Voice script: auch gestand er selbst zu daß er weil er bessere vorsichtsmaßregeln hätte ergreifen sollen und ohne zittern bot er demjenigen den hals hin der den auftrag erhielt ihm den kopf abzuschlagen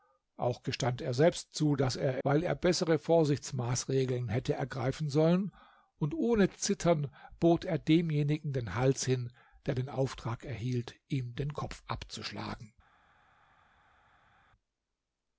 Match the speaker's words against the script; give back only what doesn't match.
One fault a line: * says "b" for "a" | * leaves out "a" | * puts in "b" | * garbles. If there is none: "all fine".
all fine